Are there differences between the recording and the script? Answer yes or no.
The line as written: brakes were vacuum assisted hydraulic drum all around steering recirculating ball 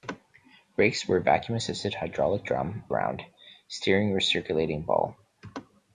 yes